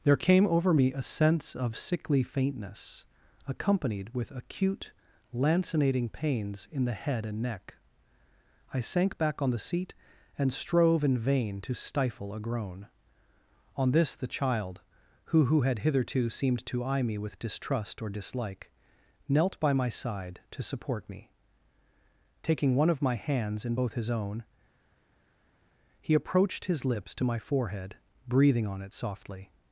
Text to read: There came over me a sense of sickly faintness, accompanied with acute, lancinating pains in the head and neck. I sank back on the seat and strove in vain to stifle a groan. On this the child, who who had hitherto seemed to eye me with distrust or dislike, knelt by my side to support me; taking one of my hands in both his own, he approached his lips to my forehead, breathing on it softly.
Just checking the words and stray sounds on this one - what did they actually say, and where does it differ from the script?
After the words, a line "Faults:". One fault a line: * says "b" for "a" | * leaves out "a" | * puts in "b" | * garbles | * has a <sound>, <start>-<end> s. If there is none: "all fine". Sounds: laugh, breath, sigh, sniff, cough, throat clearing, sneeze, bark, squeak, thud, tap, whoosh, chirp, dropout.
There came over me a sense of sickly faintness, accompanied with acute, lancinating pains in the head and neck. I sank back on the seat and strove in vain to stifle a groan. On this the child, who who had hitherto seemed to eye me with distrust or dislike, knelt by my side to support me; taking one of my hands in both his own, he approached his lips to my forehead, breathing on it softly.
Faults:
all fine